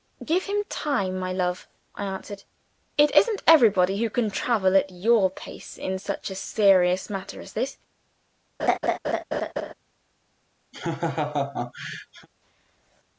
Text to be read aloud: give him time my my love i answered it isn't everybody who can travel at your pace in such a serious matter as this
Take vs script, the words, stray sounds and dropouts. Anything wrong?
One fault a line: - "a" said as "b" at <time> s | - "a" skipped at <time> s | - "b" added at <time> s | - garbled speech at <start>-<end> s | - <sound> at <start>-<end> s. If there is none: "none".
- "my" skipped at 1.3 s
- laugh at 8.6-9.7 s
- laugh at 10.7-12.3 s